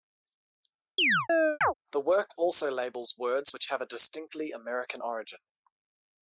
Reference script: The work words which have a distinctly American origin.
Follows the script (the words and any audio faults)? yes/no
no